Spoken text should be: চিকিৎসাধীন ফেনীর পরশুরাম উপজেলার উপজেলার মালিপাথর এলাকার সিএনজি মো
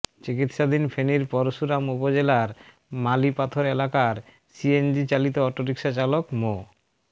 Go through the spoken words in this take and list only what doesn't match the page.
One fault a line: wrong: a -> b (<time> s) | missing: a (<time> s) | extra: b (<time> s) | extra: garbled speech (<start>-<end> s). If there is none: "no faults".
missing: উপজেলার (2.5 s)
extra: চালিত অটোরিকশা চালক (5.1 s)